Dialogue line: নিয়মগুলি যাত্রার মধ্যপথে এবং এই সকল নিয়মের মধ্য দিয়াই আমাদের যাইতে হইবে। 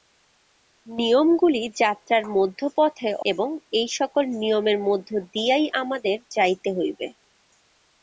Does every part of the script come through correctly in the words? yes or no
yes